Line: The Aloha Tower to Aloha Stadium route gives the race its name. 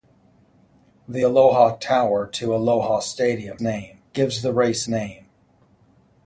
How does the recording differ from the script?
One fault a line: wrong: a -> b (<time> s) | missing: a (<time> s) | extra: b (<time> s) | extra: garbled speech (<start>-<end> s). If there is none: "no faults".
wrong: route -> name (3.6 s)
missing: its (4.9 s)